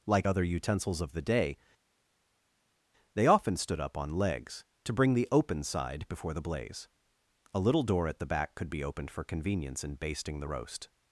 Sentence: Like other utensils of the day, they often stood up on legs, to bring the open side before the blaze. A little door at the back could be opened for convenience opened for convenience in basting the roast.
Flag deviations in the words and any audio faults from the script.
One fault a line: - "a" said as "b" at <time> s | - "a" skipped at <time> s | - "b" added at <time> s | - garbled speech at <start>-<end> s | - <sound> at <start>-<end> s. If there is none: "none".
- "opened for convenience" skipped at 9.8 s